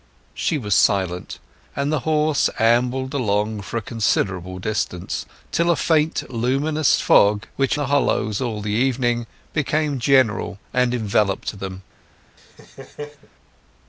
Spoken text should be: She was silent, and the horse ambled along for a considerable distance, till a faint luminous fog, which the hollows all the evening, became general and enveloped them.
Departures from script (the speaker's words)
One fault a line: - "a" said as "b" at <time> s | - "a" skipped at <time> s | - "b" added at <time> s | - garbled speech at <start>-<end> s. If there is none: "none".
none